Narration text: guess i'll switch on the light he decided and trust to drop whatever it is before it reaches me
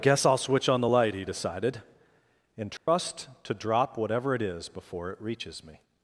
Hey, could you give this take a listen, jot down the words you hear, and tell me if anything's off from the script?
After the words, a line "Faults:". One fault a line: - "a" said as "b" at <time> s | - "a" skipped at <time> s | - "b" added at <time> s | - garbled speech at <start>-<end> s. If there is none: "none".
guess i'll switch on the light he decided and trust to drop whatever it is before it reaches me
Faults:
none